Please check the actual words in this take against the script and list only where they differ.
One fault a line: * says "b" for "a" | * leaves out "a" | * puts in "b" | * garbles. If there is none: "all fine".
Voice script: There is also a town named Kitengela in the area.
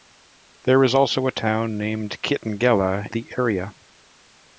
* leaves out "in"